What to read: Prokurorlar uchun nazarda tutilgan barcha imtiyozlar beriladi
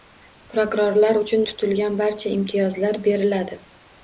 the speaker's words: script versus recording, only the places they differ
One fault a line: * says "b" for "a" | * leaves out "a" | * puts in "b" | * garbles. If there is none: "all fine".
* leaves out "nazarda"